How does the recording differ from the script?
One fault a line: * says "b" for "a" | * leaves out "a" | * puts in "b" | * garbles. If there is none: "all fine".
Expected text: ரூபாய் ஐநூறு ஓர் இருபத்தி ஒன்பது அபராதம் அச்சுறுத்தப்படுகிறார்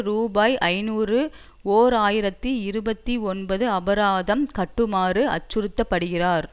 * puts in "ஆயிரத்தி"
* puts in "கட்டுமாறு"